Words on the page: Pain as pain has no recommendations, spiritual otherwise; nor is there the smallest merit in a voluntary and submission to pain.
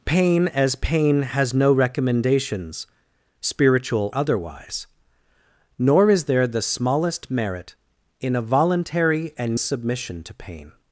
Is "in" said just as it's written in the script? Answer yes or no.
yes